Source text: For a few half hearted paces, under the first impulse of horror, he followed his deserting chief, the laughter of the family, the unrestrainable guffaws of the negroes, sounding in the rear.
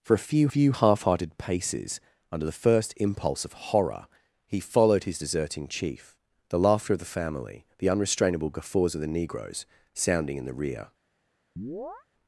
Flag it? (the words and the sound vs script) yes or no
yes